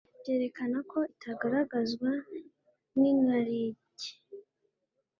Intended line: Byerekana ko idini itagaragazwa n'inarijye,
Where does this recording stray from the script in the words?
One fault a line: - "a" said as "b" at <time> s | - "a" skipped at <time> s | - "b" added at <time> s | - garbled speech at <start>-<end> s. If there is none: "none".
- "idini" skipped at 1.0 s